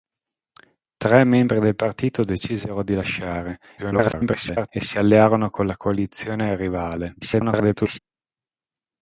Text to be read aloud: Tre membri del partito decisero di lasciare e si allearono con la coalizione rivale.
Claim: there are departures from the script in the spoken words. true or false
true